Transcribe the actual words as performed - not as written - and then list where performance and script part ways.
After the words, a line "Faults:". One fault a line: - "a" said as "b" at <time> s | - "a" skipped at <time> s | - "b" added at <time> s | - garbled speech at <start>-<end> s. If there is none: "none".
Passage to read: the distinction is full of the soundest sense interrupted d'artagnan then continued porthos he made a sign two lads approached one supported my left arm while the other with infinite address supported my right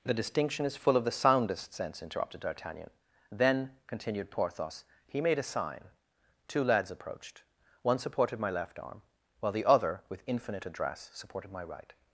the distinction is full of the soundest sense interrupted d'artagnan then continued porthos he made a sign two lads approached one supported my left arm while the other with infinite address supported my right
Faults:
none